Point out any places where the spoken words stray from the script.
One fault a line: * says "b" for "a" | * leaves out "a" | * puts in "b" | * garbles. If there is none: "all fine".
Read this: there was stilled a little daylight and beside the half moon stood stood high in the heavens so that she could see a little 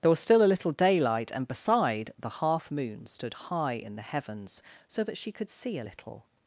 * says "still" for "stilled"
* leaves out "stood"